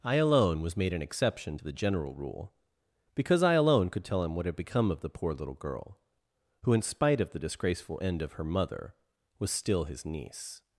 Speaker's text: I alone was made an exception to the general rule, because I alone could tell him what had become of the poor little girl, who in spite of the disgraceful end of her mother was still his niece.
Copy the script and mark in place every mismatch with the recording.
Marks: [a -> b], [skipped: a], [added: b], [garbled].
I alone was made an exception to the general rule, because I alone could tell him what had become of the poor little girl, who in spite of the disgraceful end of her mother was still his niece.